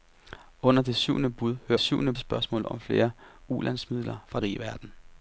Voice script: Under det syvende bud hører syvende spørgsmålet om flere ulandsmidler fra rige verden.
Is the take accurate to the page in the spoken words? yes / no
yes